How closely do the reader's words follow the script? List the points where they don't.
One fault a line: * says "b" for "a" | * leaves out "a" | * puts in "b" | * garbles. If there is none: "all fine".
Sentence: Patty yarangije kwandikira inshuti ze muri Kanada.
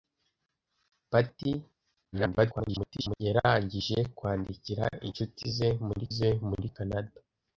* garbles
* puts in "ze muri"